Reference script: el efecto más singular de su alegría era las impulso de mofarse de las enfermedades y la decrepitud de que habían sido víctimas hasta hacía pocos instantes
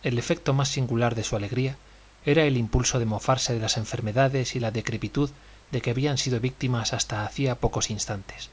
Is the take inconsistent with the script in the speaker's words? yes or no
yes